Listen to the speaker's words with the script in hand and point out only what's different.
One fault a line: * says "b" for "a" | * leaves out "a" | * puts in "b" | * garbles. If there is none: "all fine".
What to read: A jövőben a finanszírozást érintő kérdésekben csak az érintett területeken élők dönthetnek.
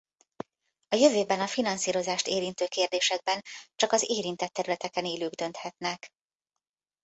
all fine